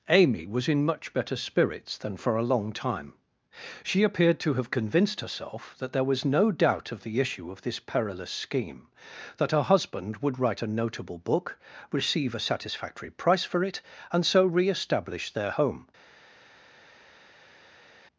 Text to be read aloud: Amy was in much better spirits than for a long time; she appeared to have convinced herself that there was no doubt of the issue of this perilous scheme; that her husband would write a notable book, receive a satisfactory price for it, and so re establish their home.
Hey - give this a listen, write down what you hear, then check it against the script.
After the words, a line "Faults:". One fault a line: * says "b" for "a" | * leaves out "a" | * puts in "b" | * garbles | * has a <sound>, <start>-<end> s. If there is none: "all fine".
Amy was in much better spirits than for a long time; she appeared to have convinced herself that there was no doubt of the issue of this perilous scheme; that her husband would write a notable book, receive a satisfactory price for it, and so re establish their home.
Faults:
all fine